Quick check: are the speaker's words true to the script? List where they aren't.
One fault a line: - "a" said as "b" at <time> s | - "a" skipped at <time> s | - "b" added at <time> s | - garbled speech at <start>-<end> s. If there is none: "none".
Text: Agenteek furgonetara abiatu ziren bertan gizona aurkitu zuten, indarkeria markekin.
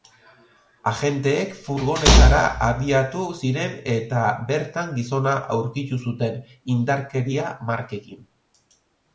- "eta" added at 4.0 s